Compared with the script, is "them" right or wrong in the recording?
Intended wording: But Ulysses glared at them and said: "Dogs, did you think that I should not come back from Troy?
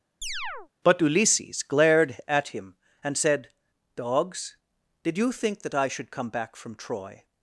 wrong